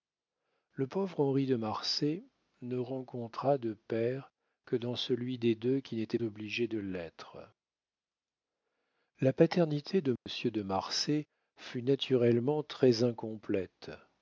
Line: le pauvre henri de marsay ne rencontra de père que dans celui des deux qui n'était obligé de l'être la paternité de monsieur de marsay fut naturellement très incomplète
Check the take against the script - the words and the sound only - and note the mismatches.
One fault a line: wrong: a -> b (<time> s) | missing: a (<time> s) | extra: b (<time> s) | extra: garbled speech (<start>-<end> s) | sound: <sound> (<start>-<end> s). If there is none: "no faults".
sound: dropout (10.2-10.3 s)